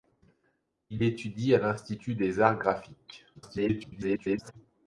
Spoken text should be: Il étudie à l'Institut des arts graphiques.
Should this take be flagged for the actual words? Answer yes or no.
yes